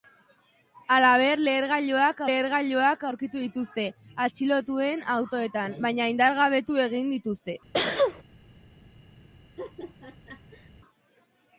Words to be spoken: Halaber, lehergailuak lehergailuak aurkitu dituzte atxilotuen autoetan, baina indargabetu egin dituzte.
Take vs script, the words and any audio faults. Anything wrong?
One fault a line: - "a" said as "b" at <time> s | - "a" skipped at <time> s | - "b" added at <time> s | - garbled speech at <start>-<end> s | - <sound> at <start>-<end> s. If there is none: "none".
- sneeze at 7.7-8.2 s
- laugh at 9.6-10.7 s